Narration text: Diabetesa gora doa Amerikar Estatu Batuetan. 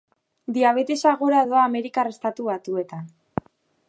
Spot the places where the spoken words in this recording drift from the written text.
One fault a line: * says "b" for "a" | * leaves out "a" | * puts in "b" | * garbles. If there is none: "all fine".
all fine